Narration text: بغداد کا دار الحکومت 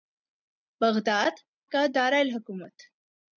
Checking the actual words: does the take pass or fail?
pass